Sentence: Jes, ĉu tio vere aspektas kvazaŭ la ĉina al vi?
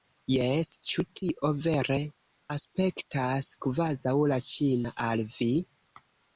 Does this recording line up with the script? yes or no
yes